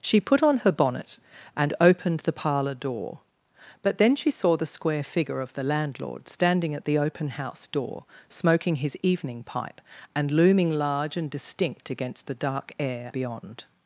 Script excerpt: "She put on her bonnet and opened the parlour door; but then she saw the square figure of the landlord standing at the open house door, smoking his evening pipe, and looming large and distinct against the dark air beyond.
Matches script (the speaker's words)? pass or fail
pass